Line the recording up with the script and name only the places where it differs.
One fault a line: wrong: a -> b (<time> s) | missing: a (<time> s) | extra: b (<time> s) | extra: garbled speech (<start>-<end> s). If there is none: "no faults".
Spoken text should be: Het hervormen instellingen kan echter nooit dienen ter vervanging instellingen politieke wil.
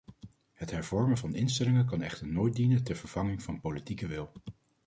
extra: van (1.1 s)
wrong: instellingen -> van (3.4 s)